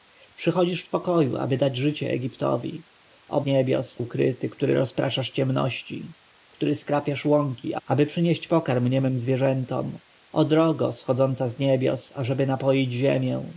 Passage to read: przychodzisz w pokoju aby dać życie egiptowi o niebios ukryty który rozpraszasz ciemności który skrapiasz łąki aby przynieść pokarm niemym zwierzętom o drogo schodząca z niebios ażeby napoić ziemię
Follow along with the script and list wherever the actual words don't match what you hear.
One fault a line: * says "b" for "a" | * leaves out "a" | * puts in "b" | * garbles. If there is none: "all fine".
all fine